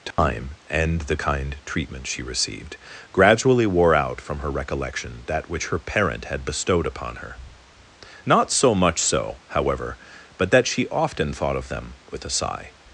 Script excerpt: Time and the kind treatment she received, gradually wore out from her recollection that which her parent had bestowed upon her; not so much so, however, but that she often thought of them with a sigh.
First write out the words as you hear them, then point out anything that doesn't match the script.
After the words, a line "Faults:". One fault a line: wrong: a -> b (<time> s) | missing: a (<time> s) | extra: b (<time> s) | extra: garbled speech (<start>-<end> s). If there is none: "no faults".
Time and the kind treatment she received, gradually wore out from her recollection that which her parent had bestowed upon her; not so much so, however, but that she often thought of them with a sigh.
Faults:
no faults